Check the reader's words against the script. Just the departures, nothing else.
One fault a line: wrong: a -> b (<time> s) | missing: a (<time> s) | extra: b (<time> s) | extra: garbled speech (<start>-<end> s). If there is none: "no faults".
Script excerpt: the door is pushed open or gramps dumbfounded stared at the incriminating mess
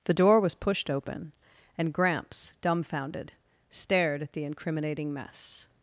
wrong: is -> was (0.4 s)
wrong: or -> and (1.8 s)